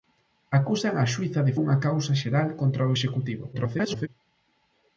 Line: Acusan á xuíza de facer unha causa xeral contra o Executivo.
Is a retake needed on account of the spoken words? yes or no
yes